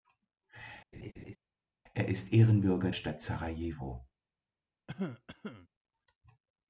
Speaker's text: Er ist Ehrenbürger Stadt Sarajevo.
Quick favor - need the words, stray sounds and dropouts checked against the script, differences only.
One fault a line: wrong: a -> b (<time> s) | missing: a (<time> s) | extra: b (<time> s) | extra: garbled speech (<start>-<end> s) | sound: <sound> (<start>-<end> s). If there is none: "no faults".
sound: laugh (0.9-1.4 s)
sound: cough (4.9-5.7 s)